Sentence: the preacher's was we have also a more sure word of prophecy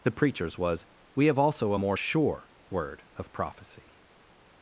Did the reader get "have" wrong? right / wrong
right